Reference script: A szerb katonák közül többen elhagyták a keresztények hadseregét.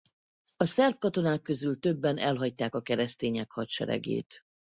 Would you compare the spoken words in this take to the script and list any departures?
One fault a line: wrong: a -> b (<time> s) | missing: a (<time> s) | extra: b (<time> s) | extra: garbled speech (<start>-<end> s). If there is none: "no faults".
no faults